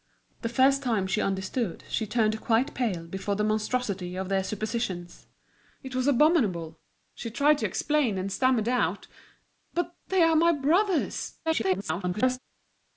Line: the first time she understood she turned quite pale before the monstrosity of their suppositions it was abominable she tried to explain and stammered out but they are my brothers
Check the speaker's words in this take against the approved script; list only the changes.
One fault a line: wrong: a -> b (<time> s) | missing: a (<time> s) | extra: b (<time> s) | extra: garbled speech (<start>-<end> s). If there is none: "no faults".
extra: garbled speech (11.5-12.4 s)